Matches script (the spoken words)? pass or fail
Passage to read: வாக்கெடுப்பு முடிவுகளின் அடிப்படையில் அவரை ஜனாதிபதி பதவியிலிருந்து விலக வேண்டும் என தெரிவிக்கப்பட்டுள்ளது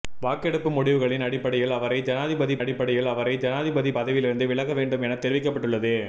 fail